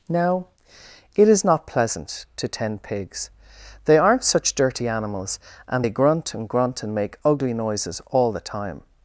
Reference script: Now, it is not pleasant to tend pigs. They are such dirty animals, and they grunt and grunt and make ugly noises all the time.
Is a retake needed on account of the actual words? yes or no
yes